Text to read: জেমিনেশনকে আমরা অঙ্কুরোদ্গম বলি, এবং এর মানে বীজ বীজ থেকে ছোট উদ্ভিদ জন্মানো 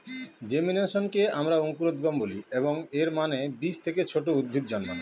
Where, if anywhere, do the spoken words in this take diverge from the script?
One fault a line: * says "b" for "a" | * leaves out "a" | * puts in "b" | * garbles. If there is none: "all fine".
* leaves out "বীজ"